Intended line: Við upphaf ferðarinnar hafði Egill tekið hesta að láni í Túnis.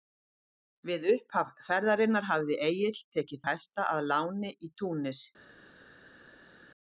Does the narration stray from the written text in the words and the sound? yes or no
no